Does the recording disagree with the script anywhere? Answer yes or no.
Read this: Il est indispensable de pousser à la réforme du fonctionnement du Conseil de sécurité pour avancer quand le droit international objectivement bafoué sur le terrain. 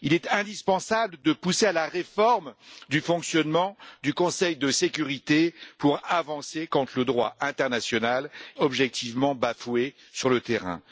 no